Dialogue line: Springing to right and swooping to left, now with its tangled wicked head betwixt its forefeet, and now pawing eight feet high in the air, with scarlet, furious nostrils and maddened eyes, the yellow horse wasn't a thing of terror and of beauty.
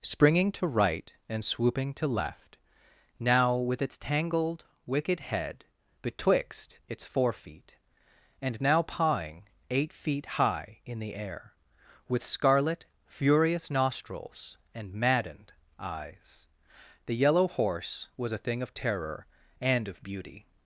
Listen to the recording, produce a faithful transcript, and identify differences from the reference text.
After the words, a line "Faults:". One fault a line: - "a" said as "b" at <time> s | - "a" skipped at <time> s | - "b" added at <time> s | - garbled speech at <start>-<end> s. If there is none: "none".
Springing to right and swooping to left, now with its tangled wicked head betwixt its forefeet, and now pawing eight feet high in the air, with scarlet, furious nostrils and maddened eyes, the yellow horse was a thing of terror and of beauty.
Faults:
- "wasn't" said as "was" at 18.2 s